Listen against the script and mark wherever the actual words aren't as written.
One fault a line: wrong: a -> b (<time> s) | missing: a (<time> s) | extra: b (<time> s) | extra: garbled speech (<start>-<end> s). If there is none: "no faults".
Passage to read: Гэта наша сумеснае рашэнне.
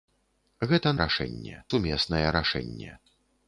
wrong: наша -> рашэнне (1.0 s)